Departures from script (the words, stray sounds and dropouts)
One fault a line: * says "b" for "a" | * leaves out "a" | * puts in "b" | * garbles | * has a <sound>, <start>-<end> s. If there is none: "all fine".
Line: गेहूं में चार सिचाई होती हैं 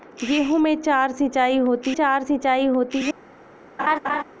* puts in "चार सिचाई होती"
* has a laugh, 3.8-4.2 s